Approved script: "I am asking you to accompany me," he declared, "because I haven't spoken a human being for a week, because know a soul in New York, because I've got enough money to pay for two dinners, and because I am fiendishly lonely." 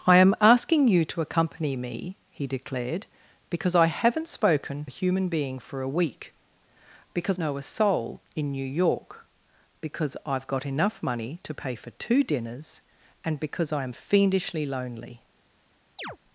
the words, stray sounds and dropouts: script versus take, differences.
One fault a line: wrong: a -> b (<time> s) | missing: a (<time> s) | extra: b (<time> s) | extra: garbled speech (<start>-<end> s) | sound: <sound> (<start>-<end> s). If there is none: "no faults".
sound: chirp (16.0-16.2 s)